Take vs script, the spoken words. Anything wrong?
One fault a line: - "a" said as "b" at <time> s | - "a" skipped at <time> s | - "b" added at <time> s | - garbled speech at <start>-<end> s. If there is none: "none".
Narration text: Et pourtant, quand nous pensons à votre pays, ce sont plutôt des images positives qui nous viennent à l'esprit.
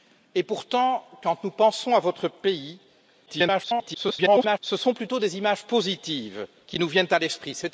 - garbled speech at 3.3-4.6 s